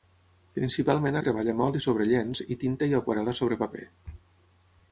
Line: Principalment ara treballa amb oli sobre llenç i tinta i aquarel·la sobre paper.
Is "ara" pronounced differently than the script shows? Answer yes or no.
yes